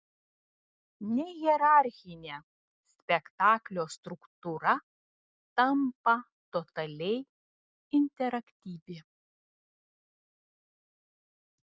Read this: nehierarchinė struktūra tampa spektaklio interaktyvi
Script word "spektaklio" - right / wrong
wrong